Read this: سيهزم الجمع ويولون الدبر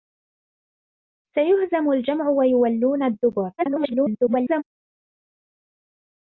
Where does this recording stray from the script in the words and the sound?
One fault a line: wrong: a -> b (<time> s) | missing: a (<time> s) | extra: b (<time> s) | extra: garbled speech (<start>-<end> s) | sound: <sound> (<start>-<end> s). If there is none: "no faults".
extra: garbled speech (3.6-4.6 s)